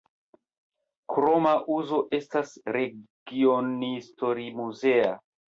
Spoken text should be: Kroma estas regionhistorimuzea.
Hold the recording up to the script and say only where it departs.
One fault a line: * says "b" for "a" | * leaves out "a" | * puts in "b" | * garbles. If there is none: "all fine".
* puts in "uzo"